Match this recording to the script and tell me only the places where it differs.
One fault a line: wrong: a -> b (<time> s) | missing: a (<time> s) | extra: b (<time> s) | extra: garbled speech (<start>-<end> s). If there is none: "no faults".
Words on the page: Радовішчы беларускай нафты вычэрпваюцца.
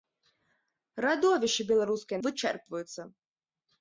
missing: нафты (2.2 s)